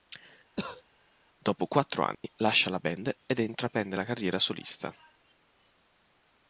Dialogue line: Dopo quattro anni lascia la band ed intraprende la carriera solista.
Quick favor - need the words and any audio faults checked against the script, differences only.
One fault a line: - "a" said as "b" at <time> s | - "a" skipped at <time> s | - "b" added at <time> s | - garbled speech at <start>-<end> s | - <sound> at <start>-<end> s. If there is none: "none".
- cough at 0.6-0.8 s
- dropout at 2.1-2.2 s